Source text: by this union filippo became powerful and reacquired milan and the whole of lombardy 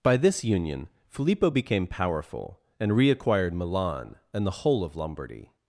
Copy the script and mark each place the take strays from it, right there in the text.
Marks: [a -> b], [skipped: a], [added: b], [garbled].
by this union filippo became powerful and reacquired milan and the whole of lombardy